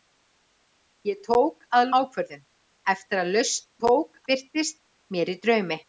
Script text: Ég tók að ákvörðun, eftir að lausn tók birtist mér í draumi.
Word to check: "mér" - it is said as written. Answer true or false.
true